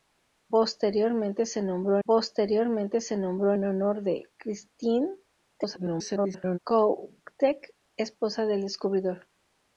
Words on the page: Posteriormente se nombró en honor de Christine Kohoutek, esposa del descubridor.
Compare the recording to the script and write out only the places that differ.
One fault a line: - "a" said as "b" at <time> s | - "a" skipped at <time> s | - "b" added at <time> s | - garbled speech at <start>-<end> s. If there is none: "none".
- "posteriormente se nombró" added at 2.0 s
- garbled speech at 5.5-6.6 s